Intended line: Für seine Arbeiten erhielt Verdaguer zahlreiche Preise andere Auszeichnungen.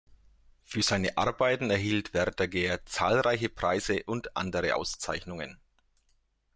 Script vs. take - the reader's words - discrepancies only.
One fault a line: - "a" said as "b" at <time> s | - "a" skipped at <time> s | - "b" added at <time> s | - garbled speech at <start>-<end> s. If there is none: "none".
- "und" added at 4.0 s